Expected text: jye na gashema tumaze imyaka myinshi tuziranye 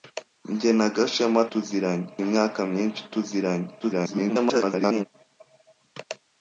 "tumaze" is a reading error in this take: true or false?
true